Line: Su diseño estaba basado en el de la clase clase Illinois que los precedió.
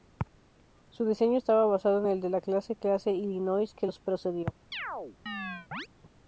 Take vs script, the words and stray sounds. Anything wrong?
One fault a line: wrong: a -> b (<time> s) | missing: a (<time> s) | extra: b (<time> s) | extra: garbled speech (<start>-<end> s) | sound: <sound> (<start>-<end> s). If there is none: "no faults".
sound: chirp (4.7-5.9 s)